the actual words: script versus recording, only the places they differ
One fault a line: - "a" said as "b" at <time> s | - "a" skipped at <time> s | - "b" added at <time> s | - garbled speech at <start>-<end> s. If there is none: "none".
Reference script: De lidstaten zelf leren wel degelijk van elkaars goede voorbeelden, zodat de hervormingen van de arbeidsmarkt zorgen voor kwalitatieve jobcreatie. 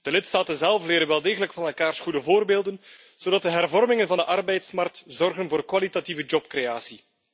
none